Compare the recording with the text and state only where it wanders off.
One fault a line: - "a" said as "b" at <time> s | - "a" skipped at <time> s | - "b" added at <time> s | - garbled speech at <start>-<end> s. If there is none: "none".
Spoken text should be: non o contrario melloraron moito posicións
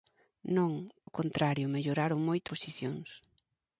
none